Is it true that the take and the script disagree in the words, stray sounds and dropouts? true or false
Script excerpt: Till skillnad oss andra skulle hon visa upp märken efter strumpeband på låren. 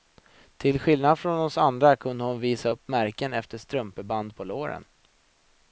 true